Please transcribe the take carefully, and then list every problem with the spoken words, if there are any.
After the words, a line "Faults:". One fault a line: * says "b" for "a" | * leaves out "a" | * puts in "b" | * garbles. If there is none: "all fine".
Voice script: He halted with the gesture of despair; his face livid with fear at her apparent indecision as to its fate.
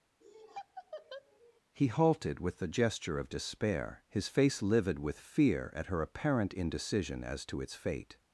He halted with the gesture of despair; his face livid with fear at her apparent indecision as to its fate.
Faults:
all fine